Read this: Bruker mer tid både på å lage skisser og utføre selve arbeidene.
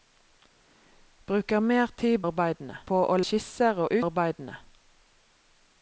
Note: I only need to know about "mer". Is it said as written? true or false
true